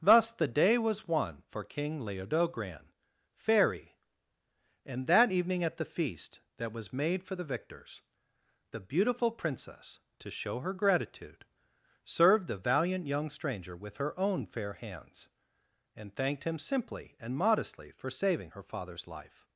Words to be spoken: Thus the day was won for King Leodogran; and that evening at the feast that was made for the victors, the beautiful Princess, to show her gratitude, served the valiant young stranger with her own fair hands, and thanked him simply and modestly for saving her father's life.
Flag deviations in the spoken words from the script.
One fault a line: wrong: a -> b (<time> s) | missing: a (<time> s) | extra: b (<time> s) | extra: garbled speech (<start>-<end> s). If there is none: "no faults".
extra: fairy (3.3 s)